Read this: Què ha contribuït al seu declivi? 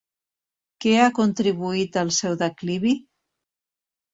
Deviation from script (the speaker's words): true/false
false